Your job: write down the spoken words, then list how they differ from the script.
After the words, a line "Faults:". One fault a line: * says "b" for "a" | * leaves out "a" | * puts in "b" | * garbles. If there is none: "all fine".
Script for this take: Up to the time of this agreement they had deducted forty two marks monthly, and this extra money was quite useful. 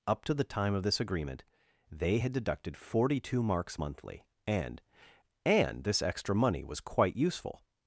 Up to the time of this agreement they had deducted forty two marks monthly, and and this extra money was quite useful.
Faults:
* puts in "and"